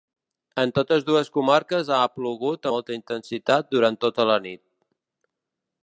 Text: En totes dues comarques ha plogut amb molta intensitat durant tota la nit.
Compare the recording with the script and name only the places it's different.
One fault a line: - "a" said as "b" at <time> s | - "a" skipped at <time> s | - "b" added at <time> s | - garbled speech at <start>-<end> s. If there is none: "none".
- "amb" skipped at 2.7 s